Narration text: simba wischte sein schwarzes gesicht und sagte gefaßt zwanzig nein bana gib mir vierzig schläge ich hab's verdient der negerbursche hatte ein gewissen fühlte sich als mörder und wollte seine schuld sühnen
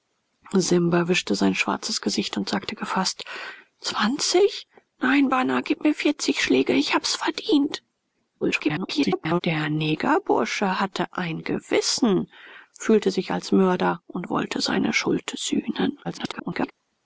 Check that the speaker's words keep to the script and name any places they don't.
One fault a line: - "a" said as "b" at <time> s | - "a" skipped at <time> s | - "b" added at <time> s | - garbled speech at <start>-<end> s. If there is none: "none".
- garbled speech at 8.4-9.4 s
- garbled speech at 16.0-16.7 s